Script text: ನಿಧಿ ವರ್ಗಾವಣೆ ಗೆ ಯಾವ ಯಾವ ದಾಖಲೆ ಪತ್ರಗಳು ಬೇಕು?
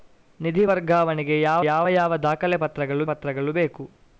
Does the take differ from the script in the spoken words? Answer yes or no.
yes